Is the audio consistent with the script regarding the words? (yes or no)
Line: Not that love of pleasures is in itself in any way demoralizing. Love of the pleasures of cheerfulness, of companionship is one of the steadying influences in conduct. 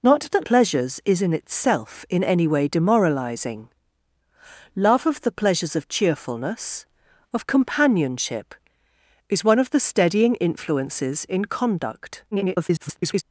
no